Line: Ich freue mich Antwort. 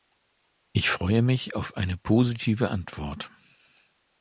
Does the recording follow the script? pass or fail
fail